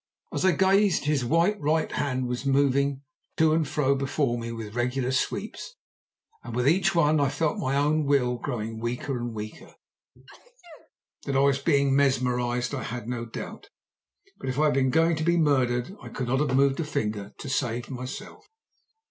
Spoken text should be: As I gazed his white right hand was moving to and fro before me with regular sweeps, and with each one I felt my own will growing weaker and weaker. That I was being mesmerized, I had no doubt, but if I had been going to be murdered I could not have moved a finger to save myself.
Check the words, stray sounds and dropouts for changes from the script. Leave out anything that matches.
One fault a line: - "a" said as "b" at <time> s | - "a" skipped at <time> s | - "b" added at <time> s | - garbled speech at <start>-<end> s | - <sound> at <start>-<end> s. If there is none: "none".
- sneeze at 10.1-10.9 s